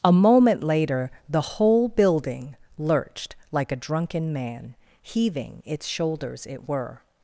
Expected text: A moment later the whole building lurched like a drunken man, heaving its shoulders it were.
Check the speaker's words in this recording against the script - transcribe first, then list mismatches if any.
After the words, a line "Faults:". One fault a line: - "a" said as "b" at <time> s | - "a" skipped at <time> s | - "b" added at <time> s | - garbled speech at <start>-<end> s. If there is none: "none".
A moment later the whole building lurched like a drunken man, heaving its shoulders it were.
Faults:
none